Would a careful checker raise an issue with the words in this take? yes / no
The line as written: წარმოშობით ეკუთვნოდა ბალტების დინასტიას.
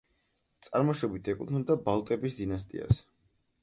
no